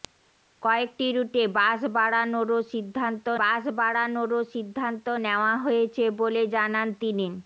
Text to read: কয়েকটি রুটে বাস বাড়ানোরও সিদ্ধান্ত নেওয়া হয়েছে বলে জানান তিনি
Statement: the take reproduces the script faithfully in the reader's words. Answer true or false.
false